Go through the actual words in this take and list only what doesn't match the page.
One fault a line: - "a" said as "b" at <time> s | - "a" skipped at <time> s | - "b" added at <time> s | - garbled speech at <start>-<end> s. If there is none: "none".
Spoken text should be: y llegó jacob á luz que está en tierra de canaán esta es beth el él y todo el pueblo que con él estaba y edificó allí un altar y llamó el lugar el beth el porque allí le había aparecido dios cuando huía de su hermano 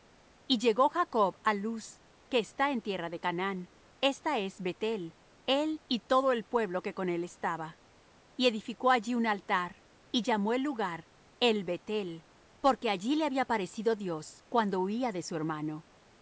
none